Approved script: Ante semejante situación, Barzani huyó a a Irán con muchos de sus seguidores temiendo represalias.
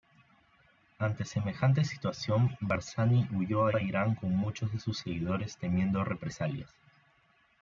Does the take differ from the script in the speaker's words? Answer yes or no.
no